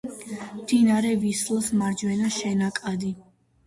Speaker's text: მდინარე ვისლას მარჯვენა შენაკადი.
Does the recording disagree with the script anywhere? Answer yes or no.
no